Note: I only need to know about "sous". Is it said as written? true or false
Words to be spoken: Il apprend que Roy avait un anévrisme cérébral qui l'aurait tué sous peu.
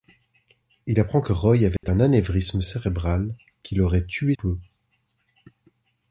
false